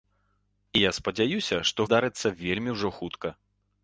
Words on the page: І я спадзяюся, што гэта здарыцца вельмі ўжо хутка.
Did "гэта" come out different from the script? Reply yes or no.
yes